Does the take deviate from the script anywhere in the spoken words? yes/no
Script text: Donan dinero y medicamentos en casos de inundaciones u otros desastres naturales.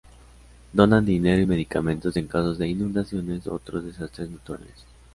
no